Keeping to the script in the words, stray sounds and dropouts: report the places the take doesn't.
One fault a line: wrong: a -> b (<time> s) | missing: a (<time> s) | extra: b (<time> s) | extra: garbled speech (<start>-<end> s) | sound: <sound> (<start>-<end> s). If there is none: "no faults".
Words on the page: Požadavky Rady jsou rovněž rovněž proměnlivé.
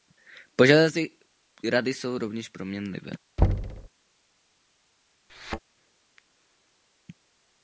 missing: rovněž (2.5 s)
sound: thud (3.4-3.9 s)
sound: thud (5.3-5.6 s)